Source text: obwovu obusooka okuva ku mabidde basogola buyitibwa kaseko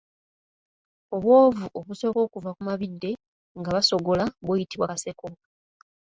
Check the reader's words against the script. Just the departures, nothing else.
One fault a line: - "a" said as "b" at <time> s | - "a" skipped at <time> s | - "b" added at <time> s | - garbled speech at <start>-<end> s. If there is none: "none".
- "nga" added at 3.6 s